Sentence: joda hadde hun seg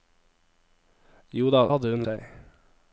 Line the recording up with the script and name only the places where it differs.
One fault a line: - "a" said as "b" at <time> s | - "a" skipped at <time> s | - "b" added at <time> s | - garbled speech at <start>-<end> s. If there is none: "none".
none